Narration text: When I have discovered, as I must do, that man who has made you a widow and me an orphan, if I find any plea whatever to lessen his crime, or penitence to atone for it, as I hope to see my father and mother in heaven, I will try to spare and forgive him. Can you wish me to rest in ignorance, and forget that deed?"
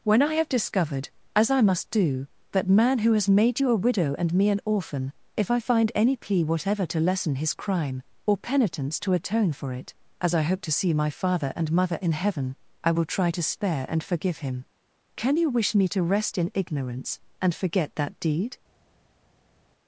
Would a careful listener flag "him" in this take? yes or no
no